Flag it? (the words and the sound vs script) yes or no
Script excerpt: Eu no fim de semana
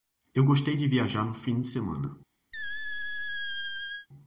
yes